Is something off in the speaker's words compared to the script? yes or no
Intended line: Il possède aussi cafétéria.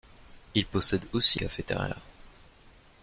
no